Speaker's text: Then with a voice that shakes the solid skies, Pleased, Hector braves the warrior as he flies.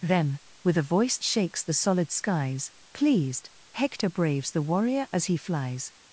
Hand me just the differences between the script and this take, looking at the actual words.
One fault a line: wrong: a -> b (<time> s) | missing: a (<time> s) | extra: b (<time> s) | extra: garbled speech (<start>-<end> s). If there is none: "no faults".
missing: that (1.2 s)